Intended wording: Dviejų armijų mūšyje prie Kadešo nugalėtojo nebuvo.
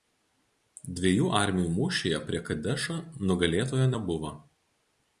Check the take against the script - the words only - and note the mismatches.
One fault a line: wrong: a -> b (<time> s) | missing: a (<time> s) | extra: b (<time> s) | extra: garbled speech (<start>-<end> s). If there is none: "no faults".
no faults